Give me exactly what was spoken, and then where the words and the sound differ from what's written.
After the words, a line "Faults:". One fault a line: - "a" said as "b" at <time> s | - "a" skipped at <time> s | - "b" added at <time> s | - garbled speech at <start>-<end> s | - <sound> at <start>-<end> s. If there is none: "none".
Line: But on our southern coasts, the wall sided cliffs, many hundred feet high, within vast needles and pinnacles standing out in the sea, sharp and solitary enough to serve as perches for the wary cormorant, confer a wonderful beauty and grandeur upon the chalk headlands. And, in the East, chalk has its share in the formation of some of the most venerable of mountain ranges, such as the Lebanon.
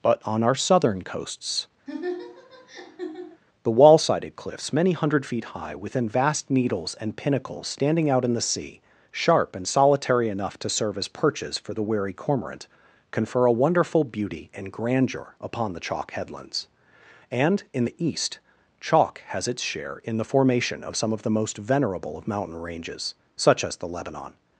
But on our southern coasts, the wall sided cliffs, many hundred feet high, within vast needles and pinnacles standing out in the sea, sharp and solitary enough to serve as perches for the wary cormorant, confer a wonderful beauty and grandeur upon the chalk headlands. And, in the East, chalk has its share in the formation of some of the most venerable of mountain ranges, such as the Lebanon.
Faults:
- laugh at 1.9-3.4 s